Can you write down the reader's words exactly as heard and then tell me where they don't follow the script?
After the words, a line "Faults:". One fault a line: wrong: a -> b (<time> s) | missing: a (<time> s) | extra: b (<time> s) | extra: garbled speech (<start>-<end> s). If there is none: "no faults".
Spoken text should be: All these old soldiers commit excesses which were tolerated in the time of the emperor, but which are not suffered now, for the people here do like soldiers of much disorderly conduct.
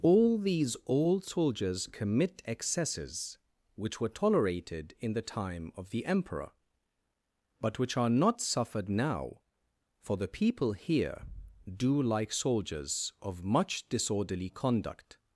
All these old soldiers commit excesses which were tolerated in the time of the emperor, but which are not suffered now, for the people here do like soldiers of much disorderly conduct.
Faults:
no faults